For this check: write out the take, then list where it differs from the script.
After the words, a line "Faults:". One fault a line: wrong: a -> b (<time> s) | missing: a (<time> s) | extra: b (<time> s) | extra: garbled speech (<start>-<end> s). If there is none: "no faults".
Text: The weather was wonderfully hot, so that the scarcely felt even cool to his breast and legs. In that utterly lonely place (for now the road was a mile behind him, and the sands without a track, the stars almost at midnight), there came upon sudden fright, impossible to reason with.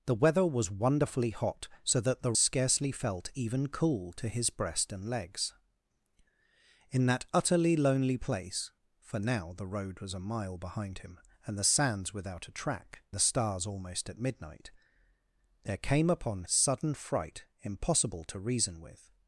The weather was wonderfully hot, so that the scarcely felt even cool to his breast and legs. In that utterly lonely place (for now the road was a mile behind him, and the sands without a track, the stars almost at midnight), there came upon sudden fright, impossible to reason with.
Faults:
no faults